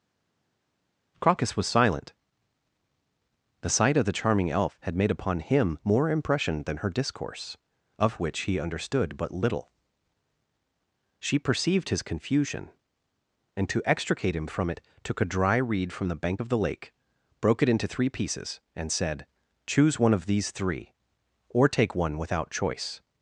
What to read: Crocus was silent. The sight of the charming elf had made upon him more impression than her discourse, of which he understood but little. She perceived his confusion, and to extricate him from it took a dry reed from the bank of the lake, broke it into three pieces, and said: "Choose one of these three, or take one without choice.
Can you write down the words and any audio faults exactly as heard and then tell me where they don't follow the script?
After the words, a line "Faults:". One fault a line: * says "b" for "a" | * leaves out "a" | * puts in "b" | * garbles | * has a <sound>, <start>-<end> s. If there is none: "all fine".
Crocus was silent. The sight of the charming elf had made upon him more impression than her discourse, of which he understood but little. She perceived his confusion, and to extricate him from it took a dry reed from the bank of the lake, broke it into three pieces, and said: "Choose one of these three, or take one without choice.
Faults:
all fine